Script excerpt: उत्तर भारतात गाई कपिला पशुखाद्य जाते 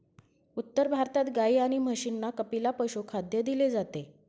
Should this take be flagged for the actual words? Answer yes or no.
yes